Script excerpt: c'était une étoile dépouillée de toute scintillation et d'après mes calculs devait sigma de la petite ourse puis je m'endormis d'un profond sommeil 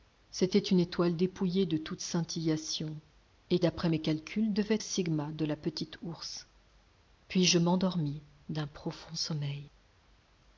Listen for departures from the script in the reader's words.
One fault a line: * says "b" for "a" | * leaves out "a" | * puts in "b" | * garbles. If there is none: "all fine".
all fine